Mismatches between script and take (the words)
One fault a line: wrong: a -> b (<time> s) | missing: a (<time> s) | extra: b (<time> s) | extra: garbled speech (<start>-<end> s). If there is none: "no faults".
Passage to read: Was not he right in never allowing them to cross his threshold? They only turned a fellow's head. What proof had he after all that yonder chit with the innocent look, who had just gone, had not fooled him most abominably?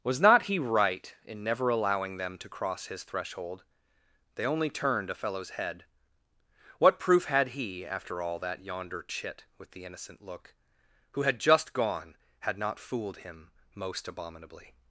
no faults